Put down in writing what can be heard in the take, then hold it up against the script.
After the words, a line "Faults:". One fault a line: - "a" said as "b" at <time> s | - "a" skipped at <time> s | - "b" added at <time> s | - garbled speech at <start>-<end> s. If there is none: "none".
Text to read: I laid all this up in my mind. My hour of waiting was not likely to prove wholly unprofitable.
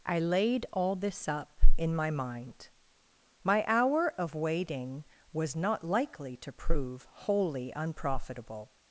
I laid all this up in my mind. My hour of waiting was not likely to prove wholly unprofitable.
Faults:
none